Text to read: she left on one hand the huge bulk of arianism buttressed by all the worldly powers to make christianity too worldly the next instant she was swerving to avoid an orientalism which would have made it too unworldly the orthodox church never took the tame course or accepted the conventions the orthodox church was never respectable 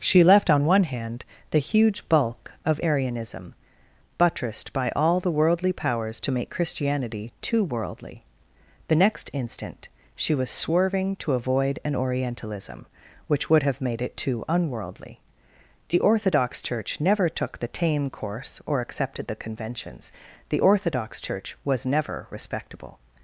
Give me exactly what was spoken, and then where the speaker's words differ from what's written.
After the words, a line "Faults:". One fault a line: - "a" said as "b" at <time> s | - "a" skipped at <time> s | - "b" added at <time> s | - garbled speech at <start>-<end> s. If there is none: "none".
she left on one hand the huge bulk of arianism buttressed by all the worldly powers to make christianity too worldly the next instant she was swerving to avoid an orientalism which would have made it too unworldly the orthodox church never took the tame course or accepted the conventions the orthodox church was never respectable
Faults:
none